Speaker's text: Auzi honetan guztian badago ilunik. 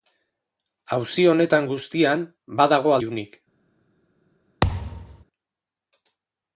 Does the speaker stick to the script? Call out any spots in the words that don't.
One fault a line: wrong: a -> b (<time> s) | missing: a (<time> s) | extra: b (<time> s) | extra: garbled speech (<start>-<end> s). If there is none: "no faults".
no faults